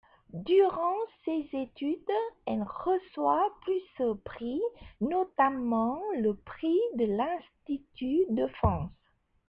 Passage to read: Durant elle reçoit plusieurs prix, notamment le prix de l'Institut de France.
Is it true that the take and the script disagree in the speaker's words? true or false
true